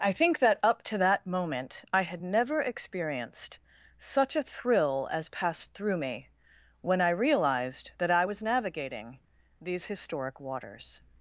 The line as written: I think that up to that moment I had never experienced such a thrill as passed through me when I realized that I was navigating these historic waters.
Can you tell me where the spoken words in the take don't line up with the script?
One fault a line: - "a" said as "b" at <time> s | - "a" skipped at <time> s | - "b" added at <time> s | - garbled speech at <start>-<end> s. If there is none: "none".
none